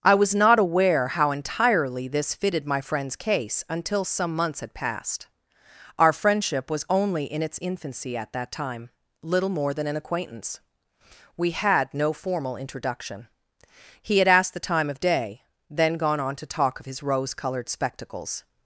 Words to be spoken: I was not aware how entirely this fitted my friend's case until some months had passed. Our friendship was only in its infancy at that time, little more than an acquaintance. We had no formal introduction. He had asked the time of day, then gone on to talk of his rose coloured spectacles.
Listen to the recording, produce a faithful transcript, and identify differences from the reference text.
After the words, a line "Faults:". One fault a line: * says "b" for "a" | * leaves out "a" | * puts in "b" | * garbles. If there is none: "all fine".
I was not aware how entirely this fitted my friend's case until some months had passed. Our friendship was only in its infancy at that time, little more than an acquaintance. We had no formal introduction. He had asked the time of day, then gone on to talk of his rose coloured spectacles.
Faults:
all fine